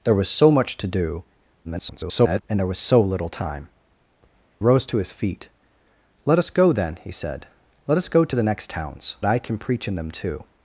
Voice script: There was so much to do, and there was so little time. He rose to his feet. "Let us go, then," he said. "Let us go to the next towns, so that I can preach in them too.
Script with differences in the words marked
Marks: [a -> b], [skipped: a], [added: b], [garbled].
There was so much to do, [garbled] and there was so little time. [skipped: He] rose to his feet. "Let us go, then," he said. "Let us go to the next towns, [skipped: so that] I can preach in them too.